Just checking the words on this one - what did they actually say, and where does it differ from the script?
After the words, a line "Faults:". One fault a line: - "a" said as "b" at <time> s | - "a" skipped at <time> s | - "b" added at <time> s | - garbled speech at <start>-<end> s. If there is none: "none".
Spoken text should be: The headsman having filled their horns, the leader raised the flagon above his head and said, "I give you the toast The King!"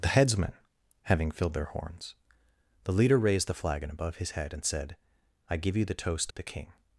The headsman having filled their horns, the leader raised the flagon above his head and said, "I give you the toast The King!"
Faults:
none